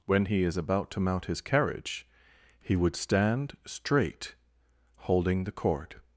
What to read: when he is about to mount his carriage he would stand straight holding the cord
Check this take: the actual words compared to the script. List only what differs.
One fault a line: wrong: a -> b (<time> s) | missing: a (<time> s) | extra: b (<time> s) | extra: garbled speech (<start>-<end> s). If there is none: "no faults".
no faults